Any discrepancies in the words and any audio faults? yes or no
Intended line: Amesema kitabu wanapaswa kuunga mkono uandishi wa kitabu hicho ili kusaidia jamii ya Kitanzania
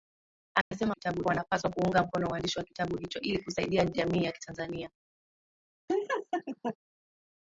yes